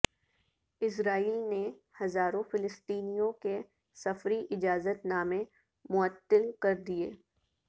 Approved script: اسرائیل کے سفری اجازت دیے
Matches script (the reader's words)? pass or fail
fail